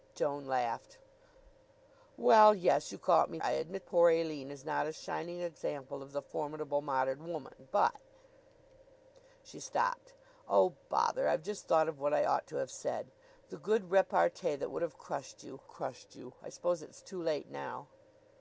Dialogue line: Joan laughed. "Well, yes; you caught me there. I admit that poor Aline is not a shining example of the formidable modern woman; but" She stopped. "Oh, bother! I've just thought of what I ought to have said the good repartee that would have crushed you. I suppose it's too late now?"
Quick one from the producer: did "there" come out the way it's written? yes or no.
no